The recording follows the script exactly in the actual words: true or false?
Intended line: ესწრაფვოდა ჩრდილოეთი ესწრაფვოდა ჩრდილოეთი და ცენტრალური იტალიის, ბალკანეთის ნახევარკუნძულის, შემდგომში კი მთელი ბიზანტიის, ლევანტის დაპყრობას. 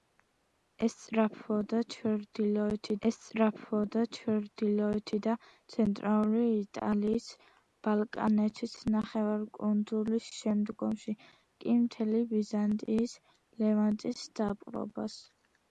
true